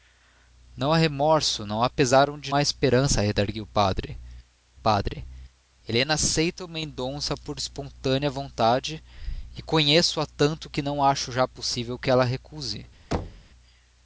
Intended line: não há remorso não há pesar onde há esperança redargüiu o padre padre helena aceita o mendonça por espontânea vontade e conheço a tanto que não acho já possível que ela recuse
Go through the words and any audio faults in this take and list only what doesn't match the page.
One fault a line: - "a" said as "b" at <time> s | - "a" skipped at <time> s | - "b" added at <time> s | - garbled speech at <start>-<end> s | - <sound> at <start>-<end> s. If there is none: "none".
- thud at 13.1-13.5 s